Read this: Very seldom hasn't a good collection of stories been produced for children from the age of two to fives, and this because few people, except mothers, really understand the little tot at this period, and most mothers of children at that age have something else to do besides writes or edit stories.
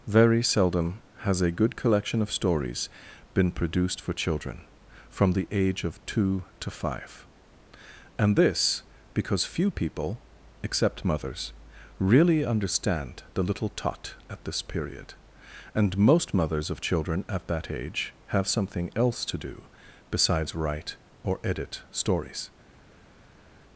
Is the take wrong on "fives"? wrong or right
wrong